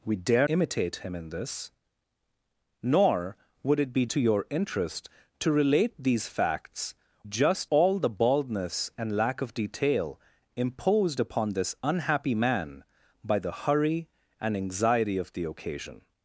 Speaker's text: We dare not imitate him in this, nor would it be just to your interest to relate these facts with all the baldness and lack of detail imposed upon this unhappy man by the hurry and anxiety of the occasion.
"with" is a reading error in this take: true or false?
true